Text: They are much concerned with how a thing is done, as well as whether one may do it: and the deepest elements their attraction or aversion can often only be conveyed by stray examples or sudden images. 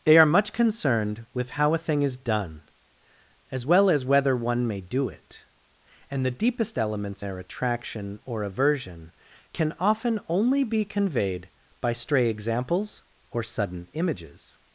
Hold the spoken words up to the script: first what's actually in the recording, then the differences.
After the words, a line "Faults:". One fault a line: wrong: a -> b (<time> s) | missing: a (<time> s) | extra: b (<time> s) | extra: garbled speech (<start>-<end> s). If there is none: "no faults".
They are much concerned with how a thing is done, as well as whether one may do it: and the deepest elements their attraction or aversion can often only be conveyed by stray examples or sudden images.
Faults:
no faults